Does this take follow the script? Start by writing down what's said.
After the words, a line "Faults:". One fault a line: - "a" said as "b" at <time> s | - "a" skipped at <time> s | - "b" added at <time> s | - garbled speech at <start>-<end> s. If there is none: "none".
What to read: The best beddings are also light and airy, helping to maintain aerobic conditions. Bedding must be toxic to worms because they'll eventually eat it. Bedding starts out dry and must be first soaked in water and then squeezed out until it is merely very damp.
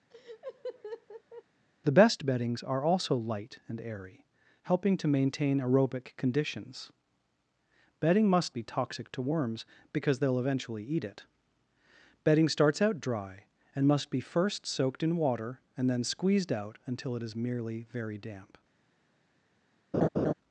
The best beddings are also light and airy, helping to maintain aerobic conditions. Bedding must be toxic to worms because they'll eventually eat it. Bedding starts out dry and must be first soaked in water and then squeezed out until it is merely very damp.
Faults:
none